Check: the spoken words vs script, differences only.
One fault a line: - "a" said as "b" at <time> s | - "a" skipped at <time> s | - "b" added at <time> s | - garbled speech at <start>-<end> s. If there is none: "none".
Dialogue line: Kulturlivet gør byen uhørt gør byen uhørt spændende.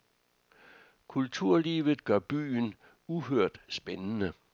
- "gør byen uhørt" skipped at 3.6 s